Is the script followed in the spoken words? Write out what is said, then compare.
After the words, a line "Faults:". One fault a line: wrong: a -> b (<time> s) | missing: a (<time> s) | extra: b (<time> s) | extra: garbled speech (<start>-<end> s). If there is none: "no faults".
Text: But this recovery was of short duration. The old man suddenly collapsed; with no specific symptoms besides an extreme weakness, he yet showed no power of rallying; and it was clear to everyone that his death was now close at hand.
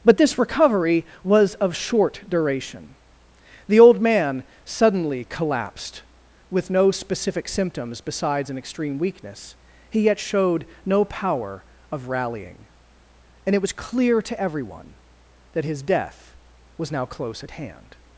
But this recovery was of short duration. The old man suddenly collapsed; with no specific symptoms besides an extreme weakness, he yet showed no power of rallying; and it was clear to everyone that his death was now close at hand.
Faults:
no faults